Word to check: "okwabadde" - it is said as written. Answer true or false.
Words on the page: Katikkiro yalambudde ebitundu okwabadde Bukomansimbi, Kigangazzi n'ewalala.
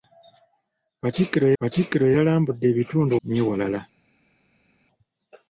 false